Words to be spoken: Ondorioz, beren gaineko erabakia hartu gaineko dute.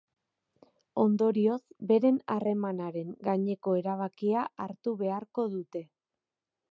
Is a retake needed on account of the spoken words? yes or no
yes